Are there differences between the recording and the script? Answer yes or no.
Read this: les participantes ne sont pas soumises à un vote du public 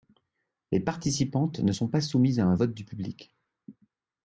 no